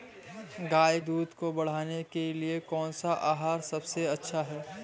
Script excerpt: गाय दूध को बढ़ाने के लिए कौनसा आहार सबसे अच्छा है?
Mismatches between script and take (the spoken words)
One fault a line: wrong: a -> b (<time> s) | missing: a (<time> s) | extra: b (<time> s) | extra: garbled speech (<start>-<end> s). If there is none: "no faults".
no faults